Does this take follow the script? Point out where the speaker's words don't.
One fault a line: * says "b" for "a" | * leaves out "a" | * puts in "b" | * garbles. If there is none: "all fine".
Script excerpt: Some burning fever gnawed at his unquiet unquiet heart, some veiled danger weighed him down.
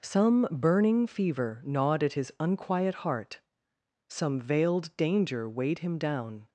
* leaves out "unquiet"